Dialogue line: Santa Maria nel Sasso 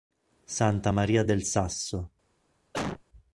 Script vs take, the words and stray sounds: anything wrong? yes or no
yes